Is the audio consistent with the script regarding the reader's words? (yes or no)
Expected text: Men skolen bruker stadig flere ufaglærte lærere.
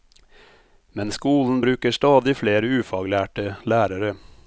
yes